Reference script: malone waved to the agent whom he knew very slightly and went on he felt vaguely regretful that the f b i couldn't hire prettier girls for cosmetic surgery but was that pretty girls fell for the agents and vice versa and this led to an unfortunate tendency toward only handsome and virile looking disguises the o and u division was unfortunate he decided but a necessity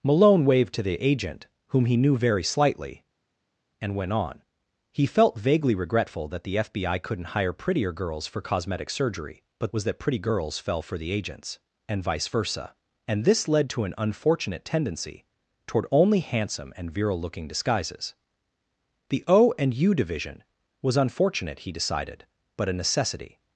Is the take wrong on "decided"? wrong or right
right